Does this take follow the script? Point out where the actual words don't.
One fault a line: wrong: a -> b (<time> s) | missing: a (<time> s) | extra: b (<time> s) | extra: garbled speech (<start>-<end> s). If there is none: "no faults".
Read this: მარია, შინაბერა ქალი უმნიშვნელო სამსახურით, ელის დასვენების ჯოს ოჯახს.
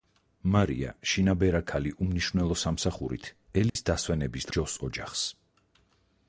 no faults